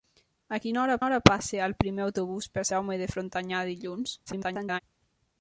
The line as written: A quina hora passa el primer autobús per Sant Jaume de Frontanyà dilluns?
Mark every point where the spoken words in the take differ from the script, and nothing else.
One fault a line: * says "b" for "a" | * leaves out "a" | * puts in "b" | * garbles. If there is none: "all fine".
* puts in "hora"
* leaves out "Sant"
* garbles